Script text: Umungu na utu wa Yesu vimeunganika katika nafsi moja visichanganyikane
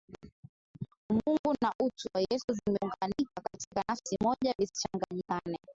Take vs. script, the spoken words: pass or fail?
pass